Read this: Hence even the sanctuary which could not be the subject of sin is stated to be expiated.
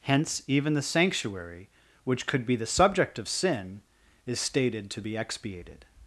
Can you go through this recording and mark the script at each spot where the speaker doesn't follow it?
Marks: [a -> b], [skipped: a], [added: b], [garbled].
Hence even the sanctuary which could [skipped: not] be the subject of sin is stated to be expiated.